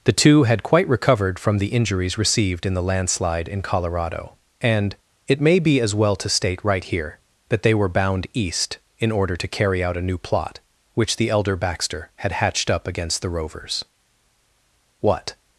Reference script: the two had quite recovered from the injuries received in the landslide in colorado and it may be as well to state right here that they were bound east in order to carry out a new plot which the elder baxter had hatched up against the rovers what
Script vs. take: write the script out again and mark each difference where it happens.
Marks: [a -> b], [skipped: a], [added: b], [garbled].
the two had quite recovered from the injuries received in the landslide in colorado and it may be as well to state right here that they were bound east in order to carry out a new plot which the elder baxter had hatched up against the rovers what